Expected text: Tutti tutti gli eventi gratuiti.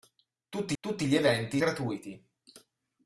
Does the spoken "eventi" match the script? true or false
true